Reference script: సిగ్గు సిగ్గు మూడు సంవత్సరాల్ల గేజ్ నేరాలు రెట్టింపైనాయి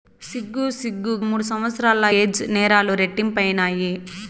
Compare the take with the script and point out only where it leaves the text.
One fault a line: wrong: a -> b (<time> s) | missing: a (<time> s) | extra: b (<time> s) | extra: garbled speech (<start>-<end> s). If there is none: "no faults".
no faults